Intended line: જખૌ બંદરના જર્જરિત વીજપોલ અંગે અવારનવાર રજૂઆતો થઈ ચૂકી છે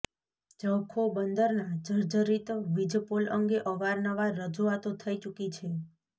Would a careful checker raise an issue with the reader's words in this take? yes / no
no